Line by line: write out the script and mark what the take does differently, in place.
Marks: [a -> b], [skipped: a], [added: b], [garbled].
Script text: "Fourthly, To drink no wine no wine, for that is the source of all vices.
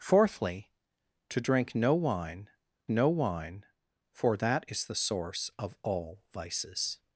"Fourthly, To drink no wine no wine, for that is the source of all vices.